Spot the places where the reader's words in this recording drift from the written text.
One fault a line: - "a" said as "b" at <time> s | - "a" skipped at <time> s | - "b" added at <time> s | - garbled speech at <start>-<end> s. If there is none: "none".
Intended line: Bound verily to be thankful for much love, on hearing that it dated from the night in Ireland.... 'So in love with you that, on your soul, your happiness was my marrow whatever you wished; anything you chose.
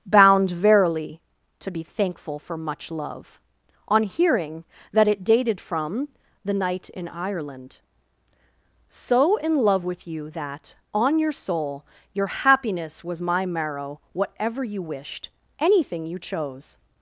none